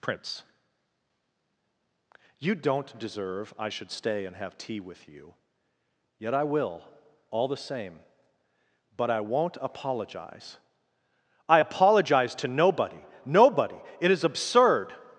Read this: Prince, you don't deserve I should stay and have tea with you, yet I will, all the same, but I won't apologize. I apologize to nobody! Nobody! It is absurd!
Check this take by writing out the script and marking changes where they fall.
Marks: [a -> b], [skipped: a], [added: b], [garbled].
Prince, you don't deserve I should stay and have tea with you, yet I will, all the same, but I won't apologize. I apologize to nobody! Nobody! It is absurd!